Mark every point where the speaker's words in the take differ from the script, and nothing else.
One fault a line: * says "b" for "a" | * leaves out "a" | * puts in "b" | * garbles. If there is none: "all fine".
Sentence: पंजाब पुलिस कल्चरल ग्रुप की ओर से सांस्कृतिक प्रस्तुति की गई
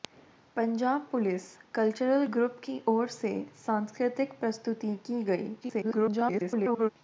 * garbles